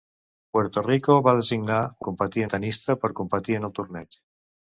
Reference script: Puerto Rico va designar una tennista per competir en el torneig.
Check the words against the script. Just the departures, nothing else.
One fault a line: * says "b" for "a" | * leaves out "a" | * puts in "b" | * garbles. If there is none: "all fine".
* says "competir" for "una"